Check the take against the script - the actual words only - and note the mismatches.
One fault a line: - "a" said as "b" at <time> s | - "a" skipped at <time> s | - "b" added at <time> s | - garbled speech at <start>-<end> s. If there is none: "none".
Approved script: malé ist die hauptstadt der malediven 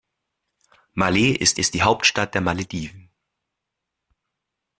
- "ist" added at 1.5 s